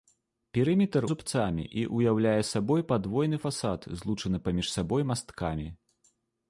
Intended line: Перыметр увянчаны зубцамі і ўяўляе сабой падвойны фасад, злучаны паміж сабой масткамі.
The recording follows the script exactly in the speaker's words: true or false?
false